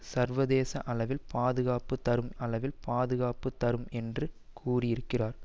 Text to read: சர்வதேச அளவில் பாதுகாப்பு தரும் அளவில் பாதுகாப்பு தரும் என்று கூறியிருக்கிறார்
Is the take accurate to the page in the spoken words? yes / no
yes